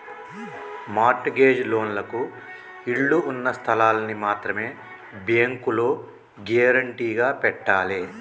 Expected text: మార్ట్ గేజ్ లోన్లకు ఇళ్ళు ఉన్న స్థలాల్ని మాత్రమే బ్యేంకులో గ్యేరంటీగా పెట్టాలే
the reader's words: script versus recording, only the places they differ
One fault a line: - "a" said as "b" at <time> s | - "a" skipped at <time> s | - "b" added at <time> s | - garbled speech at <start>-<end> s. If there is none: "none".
none